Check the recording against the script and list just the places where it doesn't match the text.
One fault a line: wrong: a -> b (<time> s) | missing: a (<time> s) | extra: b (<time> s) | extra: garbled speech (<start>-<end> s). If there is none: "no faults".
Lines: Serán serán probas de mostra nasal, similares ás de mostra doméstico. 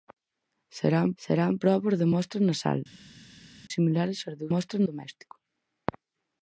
no faults